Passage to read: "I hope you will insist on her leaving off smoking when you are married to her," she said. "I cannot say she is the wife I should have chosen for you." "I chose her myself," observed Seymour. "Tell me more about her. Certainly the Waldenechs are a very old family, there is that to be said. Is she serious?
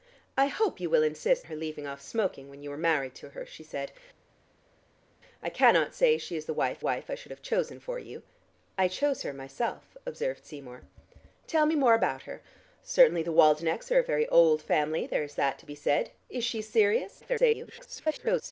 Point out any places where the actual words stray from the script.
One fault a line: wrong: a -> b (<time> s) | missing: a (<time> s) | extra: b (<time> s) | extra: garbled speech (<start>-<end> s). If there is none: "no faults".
missing: on (1.5 s)
extra: wife (6.8 s)
extra: garbled speech (17.2-18.5 s)